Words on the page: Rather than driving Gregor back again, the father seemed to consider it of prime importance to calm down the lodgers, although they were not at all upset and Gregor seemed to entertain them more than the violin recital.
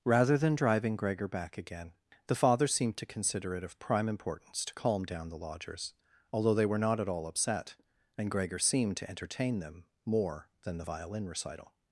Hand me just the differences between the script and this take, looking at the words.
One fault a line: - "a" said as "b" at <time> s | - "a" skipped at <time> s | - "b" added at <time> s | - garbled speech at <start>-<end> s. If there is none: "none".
none